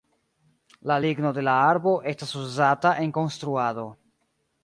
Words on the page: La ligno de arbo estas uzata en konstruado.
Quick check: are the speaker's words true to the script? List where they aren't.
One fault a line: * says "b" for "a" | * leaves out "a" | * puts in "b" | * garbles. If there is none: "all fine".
* puts in "la"